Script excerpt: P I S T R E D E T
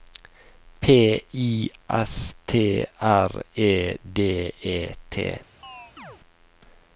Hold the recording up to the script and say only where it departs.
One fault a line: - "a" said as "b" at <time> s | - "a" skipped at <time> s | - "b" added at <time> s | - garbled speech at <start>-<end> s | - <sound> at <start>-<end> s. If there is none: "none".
- chirp at 5.6-6.2 s